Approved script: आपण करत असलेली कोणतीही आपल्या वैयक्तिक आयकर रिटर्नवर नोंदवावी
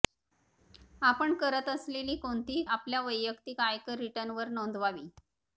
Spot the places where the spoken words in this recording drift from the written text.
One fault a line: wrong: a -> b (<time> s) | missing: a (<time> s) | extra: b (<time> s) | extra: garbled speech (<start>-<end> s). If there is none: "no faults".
no faults